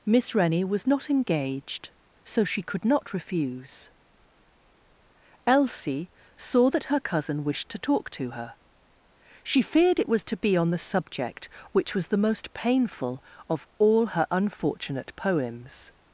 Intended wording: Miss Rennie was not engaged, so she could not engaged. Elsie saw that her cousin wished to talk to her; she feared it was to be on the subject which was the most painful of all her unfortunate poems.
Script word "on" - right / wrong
right